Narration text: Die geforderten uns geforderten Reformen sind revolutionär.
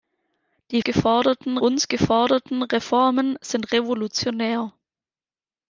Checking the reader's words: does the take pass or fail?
pass